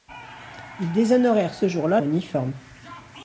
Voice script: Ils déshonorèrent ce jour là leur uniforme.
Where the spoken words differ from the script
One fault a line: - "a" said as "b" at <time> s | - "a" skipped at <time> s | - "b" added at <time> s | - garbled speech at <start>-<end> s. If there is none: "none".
- "leur" skipped at 2.0 s